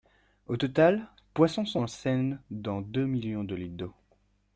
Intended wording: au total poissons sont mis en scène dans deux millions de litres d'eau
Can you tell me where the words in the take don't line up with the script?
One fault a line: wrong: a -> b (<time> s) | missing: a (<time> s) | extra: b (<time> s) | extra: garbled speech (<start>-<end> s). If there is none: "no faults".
missing: mis (1.8 s)